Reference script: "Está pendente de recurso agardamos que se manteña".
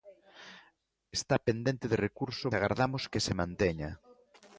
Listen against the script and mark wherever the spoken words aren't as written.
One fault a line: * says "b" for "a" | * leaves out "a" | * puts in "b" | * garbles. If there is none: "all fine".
all fine